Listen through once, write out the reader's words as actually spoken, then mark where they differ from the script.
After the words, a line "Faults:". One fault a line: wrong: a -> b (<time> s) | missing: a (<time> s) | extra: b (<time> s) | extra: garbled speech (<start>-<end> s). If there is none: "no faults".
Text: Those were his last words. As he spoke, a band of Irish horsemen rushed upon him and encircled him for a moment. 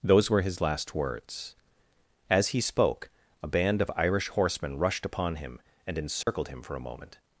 Those were his last words. As he spoke, a band of Irish horsemen rushed upon him and encircled him for a moment.
Faults:
no faults